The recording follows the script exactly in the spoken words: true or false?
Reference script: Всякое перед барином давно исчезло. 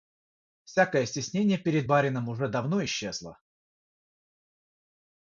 false